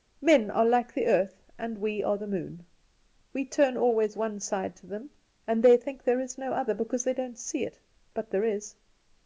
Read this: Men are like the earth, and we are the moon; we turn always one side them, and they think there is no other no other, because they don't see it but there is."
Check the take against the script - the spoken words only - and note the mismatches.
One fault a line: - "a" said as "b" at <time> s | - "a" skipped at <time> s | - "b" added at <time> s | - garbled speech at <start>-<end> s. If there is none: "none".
- "to" added at 4.8 s
- "no other" skipped at 6.7 s